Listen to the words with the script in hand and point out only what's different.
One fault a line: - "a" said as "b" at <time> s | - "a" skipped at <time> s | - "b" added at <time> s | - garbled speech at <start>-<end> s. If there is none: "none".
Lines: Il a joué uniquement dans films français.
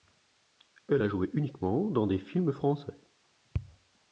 - "Il" said as "Elle" at 0.9 s
- "des" added at 2.1 s